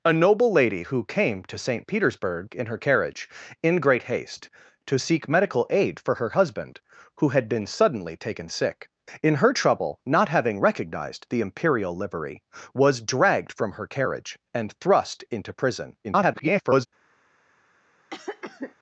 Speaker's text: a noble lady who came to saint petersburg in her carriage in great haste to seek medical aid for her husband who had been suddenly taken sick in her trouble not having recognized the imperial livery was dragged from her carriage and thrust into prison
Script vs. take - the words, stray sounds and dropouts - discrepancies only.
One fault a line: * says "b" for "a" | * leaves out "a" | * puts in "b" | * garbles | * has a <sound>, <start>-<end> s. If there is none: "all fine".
* garbles
* has a cough, 18.1-18.8 s